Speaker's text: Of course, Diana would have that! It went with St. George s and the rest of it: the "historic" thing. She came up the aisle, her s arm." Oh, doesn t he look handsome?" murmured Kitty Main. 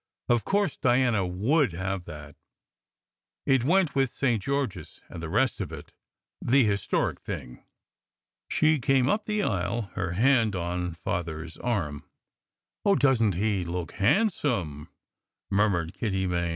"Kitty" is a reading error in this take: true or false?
false